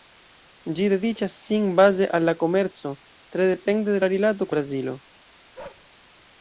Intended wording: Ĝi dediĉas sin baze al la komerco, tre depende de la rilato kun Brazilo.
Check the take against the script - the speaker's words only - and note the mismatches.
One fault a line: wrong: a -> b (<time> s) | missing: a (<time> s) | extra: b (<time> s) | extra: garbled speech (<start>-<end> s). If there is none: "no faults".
missing: kun (4.5 s)